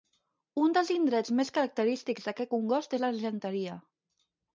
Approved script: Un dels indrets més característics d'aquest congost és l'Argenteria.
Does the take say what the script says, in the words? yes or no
yes